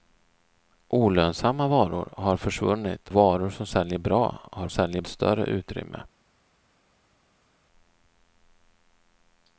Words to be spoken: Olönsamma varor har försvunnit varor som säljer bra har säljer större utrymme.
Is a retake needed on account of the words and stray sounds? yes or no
no